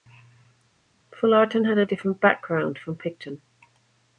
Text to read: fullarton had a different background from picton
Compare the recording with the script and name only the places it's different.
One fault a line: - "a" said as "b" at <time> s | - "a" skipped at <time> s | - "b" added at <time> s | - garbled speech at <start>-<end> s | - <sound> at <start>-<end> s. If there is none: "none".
none